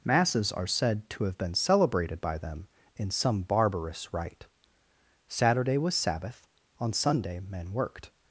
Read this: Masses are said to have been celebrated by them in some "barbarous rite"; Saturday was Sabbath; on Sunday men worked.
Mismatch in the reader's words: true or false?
false